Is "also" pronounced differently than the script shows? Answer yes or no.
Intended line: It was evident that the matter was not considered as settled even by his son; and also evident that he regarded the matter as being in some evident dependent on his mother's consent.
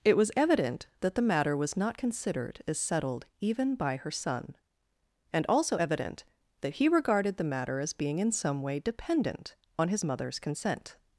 no